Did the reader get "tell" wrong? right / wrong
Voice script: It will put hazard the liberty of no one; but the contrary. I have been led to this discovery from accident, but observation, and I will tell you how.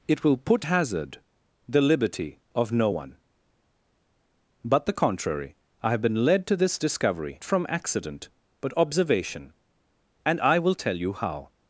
right